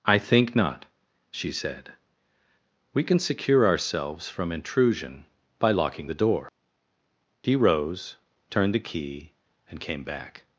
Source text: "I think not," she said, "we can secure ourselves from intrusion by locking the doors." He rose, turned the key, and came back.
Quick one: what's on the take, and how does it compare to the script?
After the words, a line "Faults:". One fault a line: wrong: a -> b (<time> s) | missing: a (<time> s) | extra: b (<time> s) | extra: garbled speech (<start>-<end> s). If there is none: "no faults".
"I think not," she said, "we can secure ourselves from intrusion by locking the door." He rose, turned the key, and came back.
Faults:
wrong: doors -> door (6.1 s)